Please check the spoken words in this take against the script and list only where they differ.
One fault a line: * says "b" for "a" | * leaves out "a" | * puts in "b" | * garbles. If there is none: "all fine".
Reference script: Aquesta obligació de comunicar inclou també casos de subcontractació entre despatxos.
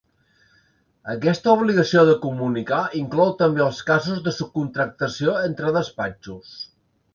* puts in "els"